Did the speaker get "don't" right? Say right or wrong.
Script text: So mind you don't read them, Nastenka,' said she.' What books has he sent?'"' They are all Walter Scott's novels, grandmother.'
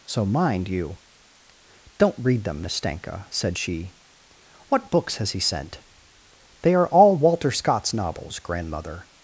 right